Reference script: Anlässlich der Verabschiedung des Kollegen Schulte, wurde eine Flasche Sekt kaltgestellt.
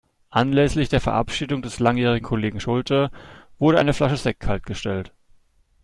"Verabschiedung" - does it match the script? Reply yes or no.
yes